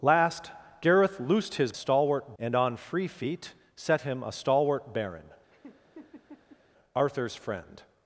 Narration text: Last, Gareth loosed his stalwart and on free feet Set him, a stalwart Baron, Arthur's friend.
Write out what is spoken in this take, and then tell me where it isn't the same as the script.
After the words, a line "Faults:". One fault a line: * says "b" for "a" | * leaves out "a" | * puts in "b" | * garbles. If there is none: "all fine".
Last, Gareth loosed his stalwart and on free feet Set him, a stalwart Baron, Arthur's friend.
Faults:
all fine